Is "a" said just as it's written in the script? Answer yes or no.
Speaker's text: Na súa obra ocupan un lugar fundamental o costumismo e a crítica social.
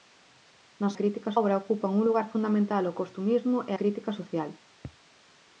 no